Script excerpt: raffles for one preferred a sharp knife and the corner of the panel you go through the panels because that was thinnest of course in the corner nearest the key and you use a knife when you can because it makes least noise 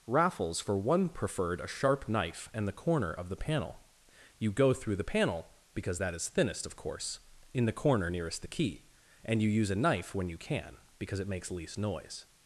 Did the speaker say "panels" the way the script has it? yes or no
no